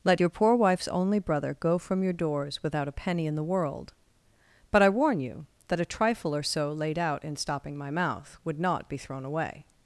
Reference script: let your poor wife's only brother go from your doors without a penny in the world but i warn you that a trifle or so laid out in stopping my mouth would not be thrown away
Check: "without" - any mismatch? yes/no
no